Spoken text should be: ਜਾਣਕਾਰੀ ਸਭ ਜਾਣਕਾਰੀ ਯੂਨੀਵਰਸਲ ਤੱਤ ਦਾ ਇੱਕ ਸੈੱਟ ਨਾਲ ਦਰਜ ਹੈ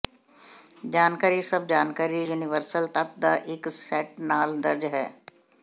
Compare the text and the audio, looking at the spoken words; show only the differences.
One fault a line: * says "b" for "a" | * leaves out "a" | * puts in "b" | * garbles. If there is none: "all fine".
all fine